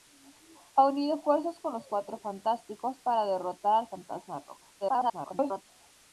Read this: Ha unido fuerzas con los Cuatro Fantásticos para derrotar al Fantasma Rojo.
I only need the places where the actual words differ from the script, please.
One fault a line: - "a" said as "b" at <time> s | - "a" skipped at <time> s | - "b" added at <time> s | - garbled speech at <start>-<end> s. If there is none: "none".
- garbled speech at 4.8-5.6 s